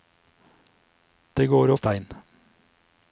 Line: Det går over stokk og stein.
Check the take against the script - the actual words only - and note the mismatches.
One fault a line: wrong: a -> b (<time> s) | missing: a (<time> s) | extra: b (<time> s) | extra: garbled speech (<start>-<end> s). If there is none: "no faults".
missing: over stokk (1.7 s)